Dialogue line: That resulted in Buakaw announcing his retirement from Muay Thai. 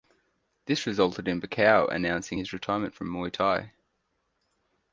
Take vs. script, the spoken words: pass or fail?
fail